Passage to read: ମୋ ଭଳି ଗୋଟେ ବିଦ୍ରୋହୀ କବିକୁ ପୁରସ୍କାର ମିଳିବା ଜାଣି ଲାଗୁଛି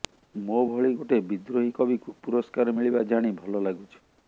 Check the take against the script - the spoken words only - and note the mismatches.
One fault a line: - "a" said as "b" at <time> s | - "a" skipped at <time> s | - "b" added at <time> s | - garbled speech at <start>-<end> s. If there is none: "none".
- "ଭଲ" added at 3.4 s